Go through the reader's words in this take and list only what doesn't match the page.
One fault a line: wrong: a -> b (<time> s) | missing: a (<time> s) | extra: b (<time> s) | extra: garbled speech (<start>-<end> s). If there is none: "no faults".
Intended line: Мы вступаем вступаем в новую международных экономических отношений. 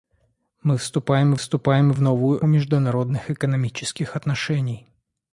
no faults